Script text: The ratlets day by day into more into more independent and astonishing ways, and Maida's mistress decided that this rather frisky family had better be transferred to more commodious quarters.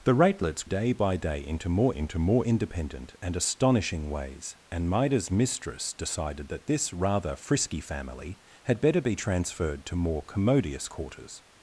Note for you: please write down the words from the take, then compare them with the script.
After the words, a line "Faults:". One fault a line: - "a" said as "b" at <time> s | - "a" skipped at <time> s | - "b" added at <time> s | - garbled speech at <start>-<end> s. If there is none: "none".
The ratlets day by day into more into more independent and astonishing ways, and Maida's mistress decided that this rather frisky family had better be transferred to more commodious quarters.
Faults:
none